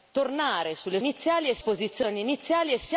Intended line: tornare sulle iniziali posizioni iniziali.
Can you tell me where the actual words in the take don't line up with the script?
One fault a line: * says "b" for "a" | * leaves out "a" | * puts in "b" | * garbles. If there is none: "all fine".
all fine